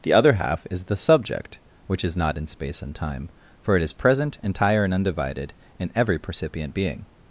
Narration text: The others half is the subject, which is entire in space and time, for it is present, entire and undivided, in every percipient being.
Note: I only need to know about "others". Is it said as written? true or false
false